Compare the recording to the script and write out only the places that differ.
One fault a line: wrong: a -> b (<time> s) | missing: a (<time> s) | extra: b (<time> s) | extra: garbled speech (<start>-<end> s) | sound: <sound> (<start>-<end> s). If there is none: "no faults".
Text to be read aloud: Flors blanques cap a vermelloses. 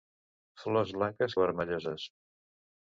missing: cap (1.4 s)